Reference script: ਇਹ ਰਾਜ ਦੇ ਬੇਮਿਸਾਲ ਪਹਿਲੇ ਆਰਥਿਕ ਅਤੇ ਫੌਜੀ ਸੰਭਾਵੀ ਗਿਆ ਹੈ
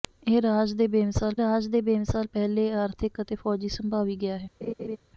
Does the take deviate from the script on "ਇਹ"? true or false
false